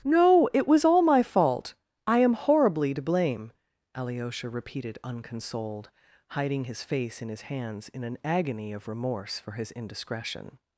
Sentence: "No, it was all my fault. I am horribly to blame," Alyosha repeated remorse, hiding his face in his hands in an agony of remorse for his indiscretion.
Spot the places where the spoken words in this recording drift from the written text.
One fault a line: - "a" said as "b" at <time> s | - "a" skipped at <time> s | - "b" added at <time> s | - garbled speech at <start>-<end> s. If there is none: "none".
- "remorse" said as "unconsoled" at 5.0 s